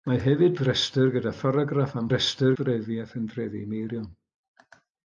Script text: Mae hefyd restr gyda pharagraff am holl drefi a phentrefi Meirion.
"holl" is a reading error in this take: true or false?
true